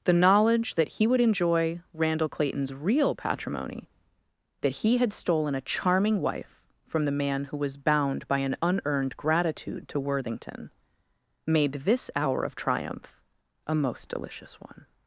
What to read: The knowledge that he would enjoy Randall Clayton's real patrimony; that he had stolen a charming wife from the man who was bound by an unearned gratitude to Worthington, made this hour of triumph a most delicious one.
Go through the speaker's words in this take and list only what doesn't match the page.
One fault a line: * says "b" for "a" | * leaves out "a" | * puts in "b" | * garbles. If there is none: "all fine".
all fine